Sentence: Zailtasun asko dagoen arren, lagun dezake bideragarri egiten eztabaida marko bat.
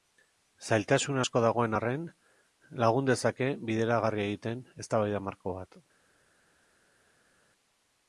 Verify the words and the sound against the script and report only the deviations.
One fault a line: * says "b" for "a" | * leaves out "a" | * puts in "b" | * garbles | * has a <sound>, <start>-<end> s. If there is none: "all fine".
all fine